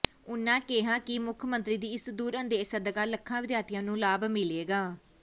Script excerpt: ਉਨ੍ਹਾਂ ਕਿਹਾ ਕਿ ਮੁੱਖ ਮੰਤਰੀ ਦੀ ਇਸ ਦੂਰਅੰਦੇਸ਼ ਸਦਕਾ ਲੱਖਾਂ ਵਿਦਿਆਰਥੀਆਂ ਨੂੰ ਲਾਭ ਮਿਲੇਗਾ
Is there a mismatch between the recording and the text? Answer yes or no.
no